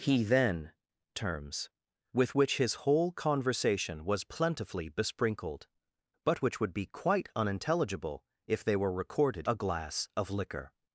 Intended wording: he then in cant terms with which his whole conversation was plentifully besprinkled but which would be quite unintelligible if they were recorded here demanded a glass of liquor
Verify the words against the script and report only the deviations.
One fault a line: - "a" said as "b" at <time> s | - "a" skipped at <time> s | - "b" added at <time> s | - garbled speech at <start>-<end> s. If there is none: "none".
- "in cant" skipped at 0.7 s
- "here demanded" skipped at 9.5 s